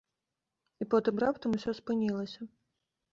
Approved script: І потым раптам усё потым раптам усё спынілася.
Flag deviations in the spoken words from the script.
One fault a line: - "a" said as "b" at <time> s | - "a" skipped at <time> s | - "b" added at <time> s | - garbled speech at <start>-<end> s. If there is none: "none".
- "потым раптам усё" skipped at 1.7 s